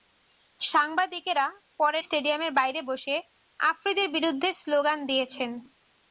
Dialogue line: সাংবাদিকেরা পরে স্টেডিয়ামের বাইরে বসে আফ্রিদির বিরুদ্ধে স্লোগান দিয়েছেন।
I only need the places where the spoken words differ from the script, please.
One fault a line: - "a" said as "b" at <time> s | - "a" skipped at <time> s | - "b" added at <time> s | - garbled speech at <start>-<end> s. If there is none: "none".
none